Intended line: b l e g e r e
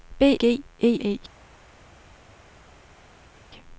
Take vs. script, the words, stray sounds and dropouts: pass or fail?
fail